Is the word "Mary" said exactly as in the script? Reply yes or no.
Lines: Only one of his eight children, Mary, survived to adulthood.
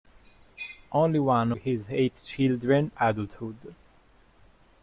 no